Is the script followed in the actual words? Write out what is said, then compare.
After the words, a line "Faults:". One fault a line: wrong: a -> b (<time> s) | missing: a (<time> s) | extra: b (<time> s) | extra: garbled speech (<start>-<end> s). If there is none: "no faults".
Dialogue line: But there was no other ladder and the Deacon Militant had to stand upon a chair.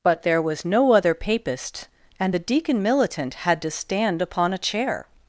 But there was no other papist and the Deacon Militant had to stand upon a chair.
Faults:
wrong: ladder -> papist (1.1 s)